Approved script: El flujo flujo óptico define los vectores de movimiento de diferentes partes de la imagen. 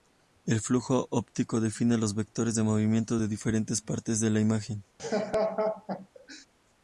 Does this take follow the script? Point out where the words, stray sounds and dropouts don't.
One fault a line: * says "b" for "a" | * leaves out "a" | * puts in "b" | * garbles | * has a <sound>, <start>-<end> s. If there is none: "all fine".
* leaves out "flujo"
* has a laugh, 5.0-6.5 s